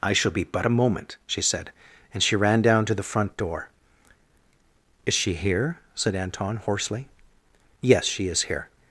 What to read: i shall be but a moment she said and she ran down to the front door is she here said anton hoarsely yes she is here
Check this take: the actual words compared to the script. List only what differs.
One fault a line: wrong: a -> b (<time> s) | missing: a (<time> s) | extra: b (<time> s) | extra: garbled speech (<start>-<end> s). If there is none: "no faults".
no faults